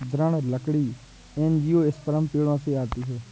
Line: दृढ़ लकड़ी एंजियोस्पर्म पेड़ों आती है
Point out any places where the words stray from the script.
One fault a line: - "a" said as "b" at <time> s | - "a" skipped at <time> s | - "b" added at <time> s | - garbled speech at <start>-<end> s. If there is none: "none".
- "से" added at 2.6 s